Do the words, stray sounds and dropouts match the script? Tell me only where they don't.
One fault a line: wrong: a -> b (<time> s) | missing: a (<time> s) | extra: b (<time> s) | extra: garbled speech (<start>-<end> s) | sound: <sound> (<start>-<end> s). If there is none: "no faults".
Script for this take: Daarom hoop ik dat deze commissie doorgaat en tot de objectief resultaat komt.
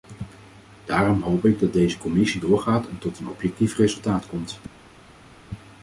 wrong: de -> een (3.2 s)